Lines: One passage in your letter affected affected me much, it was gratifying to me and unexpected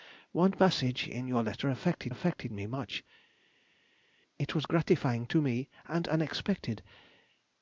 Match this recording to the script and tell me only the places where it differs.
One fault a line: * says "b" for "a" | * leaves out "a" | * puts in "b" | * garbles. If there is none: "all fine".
all fine